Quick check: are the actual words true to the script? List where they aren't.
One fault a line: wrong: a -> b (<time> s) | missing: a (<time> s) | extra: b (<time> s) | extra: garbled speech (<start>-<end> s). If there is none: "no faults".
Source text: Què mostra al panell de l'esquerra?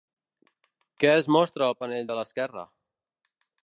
extra: es (1.2 s)